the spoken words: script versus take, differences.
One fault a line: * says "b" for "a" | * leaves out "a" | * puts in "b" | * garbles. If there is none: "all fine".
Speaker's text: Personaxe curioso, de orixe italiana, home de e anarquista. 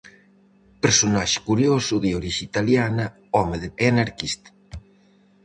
all fine